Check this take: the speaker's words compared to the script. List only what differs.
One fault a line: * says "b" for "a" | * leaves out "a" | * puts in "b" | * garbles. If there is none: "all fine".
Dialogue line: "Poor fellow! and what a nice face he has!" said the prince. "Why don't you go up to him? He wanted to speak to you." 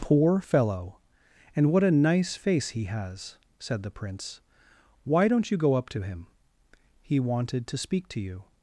all fine